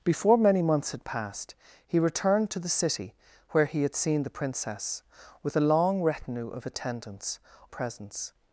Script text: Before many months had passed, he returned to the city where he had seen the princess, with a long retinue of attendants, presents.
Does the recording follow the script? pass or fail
pass